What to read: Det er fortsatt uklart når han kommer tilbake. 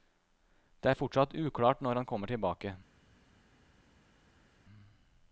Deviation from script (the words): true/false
false